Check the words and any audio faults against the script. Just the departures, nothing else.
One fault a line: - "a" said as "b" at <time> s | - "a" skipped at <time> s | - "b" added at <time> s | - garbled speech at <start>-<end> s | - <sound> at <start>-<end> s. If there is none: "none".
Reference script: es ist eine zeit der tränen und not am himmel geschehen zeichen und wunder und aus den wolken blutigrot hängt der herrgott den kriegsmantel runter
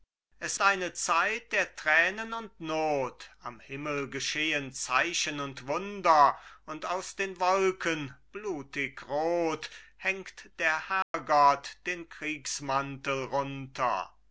- "ist" skipped at 0.6 s
- dropout at 11.0-11.1 s